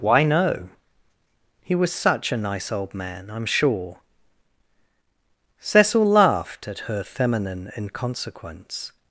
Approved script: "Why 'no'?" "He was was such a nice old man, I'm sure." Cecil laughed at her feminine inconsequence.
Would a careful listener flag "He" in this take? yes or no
no